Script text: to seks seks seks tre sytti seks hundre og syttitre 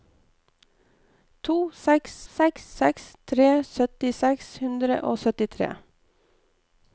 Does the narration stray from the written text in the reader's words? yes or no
no